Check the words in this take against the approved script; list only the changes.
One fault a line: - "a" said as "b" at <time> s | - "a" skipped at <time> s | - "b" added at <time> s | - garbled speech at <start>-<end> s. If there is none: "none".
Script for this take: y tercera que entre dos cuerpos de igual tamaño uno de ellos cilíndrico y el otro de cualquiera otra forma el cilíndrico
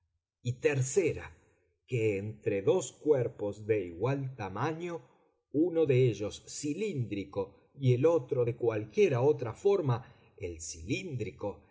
none